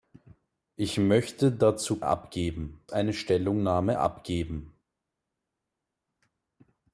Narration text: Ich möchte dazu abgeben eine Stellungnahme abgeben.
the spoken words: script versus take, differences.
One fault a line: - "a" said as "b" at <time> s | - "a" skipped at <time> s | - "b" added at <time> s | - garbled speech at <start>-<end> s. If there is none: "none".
none